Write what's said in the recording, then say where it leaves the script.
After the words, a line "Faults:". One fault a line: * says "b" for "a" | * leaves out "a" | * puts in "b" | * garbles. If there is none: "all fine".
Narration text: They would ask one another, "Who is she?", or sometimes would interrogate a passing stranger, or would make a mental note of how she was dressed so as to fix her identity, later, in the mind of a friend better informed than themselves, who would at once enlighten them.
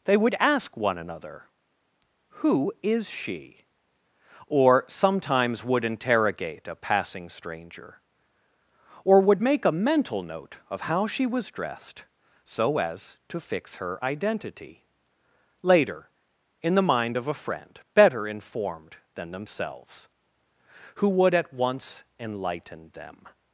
They would ask one another, "Who is she?", or sometimes would interrogate a passing stranger, or would make a mental note of how she was dressed so as to fix her identity, later, in the mind of a friend better informed than themselves, who would at once enlighten them.
Faults:
all fine